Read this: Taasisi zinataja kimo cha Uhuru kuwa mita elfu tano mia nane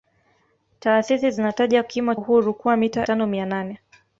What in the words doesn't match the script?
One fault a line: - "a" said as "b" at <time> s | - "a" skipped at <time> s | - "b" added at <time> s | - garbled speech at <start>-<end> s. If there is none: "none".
- "cha" skipped at 2.1 s
- "elfu" skipped at 3.1 s